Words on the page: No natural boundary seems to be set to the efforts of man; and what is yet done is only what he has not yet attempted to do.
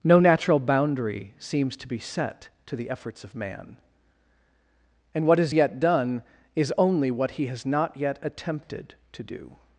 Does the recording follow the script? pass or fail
pass